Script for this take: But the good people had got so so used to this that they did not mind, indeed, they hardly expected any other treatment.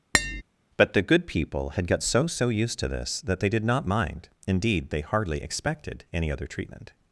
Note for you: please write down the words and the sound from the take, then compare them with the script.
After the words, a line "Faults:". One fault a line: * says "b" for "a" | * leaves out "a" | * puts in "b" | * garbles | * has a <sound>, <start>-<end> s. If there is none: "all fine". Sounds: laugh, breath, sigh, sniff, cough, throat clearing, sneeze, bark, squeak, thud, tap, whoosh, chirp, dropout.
But the good people had got so so used to this that they did not mind, indeed, they hardly expected any other treatment.
Faults:
* has a tap, 0.1-0.4 s